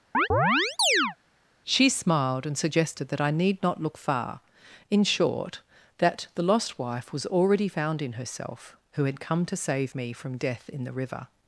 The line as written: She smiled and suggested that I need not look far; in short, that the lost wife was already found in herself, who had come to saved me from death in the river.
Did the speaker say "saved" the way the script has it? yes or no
no